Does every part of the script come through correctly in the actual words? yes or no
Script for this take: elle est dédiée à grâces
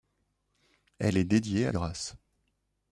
yes